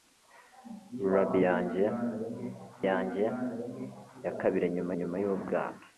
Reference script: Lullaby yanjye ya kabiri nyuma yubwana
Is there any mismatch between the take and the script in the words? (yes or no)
yes